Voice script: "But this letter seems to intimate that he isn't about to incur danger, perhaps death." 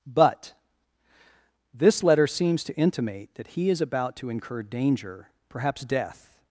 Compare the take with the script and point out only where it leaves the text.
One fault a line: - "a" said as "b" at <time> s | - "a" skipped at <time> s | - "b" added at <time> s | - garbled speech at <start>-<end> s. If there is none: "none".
- "isn't" said as "is" at 3.7 s